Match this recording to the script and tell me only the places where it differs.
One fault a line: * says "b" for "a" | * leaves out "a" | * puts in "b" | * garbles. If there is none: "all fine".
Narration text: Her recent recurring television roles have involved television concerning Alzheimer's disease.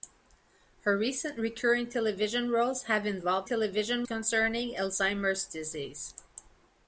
all fine